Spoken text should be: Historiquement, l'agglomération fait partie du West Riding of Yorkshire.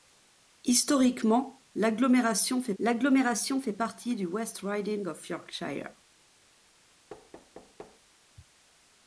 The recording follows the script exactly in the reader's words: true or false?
false